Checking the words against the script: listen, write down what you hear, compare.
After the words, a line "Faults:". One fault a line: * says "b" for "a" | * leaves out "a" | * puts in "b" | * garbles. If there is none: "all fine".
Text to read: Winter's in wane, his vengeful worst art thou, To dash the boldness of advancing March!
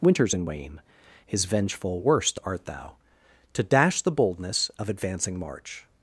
Winter's in wane, his vengeful worst art thou, To dash the boldness of advancing March!
Faults:
all fine